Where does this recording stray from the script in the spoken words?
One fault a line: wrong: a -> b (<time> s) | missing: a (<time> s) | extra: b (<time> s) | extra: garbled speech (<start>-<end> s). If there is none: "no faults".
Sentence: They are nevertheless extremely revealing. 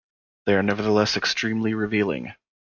no faults